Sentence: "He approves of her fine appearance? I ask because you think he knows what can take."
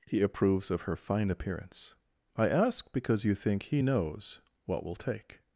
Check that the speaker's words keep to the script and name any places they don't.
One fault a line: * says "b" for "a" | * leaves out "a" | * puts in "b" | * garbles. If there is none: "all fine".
* says "will" for "can"